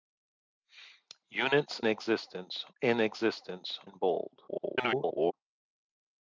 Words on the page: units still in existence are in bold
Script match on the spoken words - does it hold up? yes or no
no